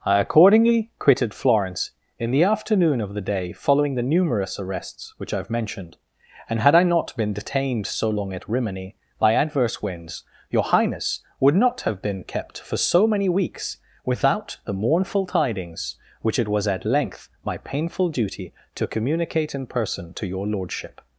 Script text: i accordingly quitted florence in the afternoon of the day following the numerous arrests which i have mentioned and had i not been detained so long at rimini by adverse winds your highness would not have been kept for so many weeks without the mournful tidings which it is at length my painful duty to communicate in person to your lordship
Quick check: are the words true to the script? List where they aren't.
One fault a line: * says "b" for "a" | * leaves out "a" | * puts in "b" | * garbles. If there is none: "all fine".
* says "was" for "is"